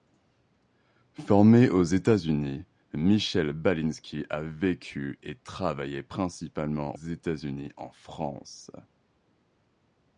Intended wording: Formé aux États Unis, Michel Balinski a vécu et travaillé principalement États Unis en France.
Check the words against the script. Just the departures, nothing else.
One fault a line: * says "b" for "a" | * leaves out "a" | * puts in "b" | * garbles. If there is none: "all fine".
all fine